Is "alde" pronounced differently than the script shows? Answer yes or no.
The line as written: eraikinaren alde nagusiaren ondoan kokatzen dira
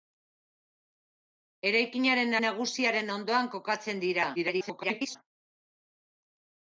yes